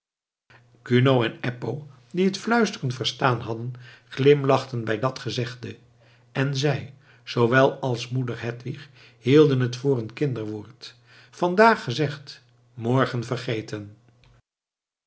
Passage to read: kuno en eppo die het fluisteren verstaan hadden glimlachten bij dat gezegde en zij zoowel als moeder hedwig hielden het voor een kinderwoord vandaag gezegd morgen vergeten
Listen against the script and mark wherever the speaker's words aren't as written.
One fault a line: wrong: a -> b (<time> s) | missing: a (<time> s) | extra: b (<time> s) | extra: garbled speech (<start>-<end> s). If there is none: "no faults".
no faults